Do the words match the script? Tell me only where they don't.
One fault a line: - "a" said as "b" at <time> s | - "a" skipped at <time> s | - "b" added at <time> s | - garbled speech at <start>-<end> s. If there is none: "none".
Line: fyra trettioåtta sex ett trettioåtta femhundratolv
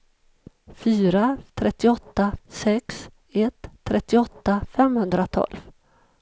none